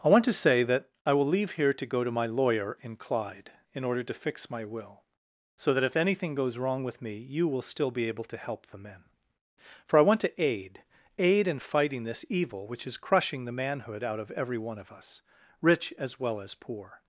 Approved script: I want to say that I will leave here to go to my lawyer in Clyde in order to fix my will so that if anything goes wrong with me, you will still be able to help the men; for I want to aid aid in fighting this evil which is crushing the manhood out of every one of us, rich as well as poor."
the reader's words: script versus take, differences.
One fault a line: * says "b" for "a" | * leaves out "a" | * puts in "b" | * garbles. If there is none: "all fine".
all fine